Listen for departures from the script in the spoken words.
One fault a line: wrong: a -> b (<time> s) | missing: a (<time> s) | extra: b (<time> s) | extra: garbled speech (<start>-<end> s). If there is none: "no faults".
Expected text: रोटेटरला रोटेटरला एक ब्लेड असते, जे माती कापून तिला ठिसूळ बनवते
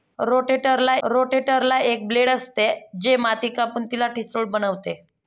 no faults